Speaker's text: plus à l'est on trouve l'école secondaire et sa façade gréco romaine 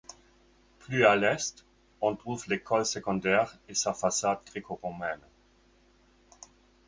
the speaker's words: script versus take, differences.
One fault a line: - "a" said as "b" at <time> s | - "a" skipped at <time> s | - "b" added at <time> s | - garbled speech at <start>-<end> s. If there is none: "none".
none